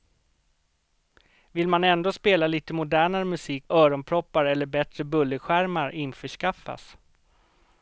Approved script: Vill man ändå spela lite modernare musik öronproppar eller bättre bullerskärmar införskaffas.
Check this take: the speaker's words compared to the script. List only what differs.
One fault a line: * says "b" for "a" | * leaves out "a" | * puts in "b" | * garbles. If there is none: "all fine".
all fine